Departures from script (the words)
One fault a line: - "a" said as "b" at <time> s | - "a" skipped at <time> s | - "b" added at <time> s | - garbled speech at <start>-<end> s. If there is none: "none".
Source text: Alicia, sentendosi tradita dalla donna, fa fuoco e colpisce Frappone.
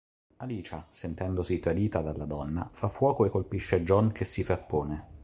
- "John che si" added at 3.8 s